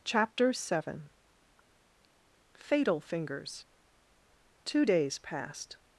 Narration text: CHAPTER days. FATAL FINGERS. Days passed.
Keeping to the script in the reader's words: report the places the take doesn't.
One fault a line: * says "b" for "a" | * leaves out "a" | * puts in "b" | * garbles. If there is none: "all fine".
* says "seven" for "days"
* puts in "Two"